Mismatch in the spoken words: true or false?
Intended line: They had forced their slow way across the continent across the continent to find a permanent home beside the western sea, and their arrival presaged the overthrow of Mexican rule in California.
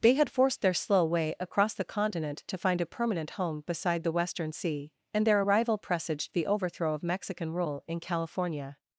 true